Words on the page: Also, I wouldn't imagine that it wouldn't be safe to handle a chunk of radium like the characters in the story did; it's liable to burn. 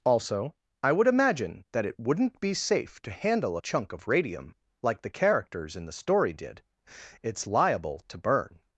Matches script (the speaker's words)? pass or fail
fail